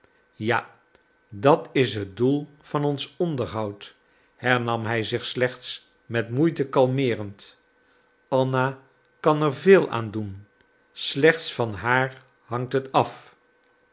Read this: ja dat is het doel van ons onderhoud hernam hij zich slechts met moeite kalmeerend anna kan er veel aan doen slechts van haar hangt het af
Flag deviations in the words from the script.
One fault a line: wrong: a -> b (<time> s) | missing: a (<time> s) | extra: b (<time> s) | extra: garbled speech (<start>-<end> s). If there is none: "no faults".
no faults